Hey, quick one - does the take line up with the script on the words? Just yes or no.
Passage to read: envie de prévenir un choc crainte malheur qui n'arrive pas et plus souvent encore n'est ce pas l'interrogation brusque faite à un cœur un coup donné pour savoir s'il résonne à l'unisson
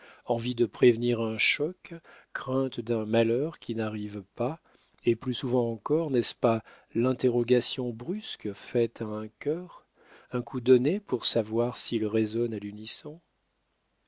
no